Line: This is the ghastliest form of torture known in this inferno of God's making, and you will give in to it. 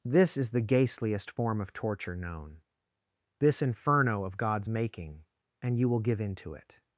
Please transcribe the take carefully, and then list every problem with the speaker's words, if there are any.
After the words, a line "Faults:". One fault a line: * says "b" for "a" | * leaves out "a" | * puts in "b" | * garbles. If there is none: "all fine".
This is the ghastliest form of torture known this inferno of God's making, and you will give in to it.
Faults:
* leaves out "in"